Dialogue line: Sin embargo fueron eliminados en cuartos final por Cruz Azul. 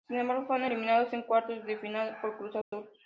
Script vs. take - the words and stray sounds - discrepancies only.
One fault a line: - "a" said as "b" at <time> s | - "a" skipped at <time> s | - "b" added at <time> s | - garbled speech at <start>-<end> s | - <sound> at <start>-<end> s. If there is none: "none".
- "de" added at 1.6 s
- dropout at 2.6-2.7 s